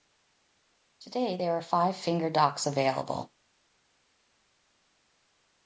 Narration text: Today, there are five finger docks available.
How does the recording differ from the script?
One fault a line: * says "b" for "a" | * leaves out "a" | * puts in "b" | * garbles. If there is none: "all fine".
all fine